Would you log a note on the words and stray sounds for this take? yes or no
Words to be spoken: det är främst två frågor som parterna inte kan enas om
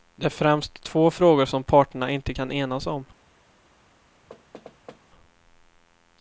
yes